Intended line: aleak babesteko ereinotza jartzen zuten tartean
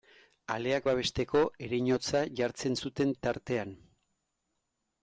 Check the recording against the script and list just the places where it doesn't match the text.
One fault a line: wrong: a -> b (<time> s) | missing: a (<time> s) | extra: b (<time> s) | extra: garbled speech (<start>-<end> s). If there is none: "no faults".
no faults